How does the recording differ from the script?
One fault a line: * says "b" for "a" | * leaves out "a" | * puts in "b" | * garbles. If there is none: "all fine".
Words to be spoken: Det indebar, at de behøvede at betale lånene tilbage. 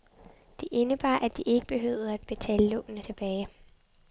* puts in "ikke"